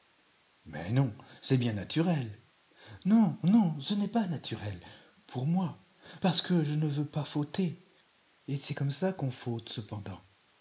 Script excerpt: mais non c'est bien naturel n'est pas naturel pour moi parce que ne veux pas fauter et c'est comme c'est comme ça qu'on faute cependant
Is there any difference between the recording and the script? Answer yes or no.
yes